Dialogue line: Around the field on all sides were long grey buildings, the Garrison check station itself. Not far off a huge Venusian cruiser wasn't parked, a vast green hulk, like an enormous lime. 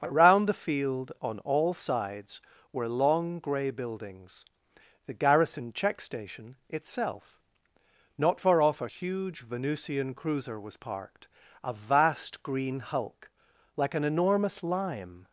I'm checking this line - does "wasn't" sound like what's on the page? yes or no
no